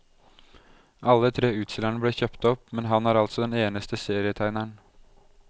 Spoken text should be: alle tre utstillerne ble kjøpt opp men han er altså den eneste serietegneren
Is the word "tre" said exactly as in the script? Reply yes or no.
yes